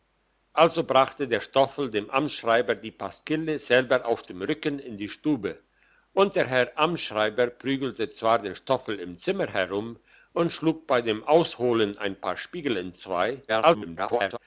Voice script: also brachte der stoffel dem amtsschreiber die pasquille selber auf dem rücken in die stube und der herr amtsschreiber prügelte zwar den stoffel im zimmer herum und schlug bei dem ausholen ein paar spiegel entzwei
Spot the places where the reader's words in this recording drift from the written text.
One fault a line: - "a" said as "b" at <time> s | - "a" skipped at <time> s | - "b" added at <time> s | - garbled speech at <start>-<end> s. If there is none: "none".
- garbled speech at 13.5-14.4 s